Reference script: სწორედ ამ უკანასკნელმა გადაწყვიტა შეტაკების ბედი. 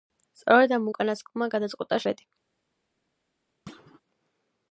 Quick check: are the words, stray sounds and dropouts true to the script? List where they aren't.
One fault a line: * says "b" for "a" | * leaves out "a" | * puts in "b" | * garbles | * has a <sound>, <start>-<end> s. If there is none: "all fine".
* leaves out "შეტაკების"
* has a thud, 3.7-4.0 s